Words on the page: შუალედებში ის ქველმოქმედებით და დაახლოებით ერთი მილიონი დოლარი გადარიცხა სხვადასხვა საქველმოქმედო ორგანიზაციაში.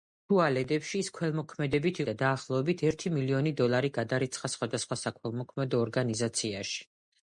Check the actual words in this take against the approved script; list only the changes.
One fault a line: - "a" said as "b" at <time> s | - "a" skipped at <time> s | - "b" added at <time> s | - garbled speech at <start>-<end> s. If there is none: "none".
none